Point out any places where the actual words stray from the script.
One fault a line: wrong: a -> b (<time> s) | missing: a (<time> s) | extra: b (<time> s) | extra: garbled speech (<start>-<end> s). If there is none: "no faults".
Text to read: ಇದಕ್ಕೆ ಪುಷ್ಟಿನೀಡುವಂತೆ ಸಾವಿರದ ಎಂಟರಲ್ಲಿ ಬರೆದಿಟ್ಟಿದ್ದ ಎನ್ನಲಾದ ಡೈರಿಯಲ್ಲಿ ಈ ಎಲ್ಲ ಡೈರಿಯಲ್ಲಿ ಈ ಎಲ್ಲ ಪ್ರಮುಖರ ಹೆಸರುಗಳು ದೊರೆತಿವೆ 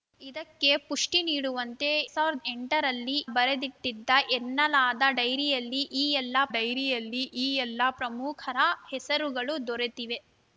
no faults